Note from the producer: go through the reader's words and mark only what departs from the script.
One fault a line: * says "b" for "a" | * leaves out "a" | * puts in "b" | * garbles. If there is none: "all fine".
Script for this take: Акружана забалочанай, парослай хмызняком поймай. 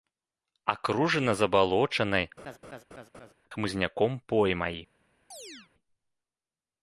* leaves out "парослай"